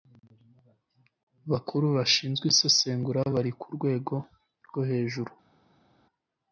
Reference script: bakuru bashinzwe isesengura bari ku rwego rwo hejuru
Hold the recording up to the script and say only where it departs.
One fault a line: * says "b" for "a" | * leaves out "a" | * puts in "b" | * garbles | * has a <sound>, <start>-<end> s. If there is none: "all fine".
all fine